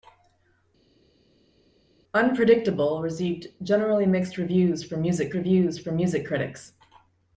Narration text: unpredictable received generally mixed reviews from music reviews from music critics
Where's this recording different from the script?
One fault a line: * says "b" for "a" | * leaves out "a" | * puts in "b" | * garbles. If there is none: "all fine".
all fine